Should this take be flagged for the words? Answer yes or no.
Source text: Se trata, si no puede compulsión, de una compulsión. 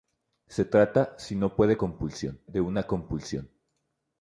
no